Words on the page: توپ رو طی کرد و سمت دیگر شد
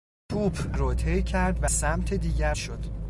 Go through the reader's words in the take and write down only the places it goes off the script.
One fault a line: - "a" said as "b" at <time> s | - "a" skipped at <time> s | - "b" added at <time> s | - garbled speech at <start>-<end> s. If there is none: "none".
none